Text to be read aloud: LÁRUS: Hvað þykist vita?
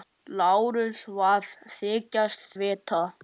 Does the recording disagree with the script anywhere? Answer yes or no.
no